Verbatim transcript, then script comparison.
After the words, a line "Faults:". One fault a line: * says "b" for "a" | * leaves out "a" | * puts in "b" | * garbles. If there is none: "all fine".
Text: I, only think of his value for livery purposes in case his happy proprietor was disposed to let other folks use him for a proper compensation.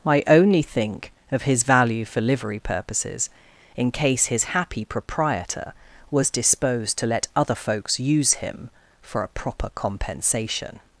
I, only think of his value for livery purposes in case his happy proprietor was disposed to let other folks use him for a proper compensation.
Faults:
all fine